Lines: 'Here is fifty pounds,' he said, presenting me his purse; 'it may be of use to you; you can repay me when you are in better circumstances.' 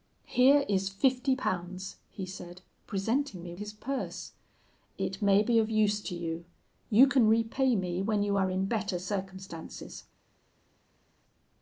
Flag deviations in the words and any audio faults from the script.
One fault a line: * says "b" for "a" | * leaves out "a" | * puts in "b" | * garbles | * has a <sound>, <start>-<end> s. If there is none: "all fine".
all fine